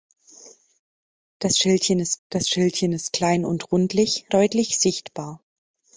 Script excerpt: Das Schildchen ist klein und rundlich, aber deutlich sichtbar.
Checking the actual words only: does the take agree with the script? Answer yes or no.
no